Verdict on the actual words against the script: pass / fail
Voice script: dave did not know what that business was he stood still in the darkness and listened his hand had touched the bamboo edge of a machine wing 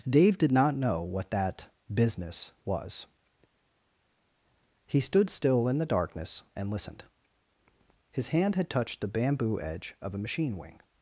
pass